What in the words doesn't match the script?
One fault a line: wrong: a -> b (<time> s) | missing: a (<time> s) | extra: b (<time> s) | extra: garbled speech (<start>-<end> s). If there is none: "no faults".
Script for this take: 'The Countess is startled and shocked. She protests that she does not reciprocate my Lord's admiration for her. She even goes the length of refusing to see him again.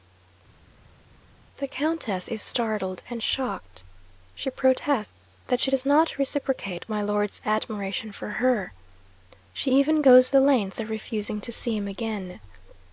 no faults